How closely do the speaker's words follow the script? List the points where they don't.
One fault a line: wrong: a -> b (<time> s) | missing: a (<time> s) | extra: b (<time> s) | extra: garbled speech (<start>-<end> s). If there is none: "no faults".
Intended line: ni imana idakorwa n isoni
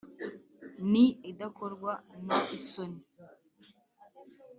missing: imana (1.1 s)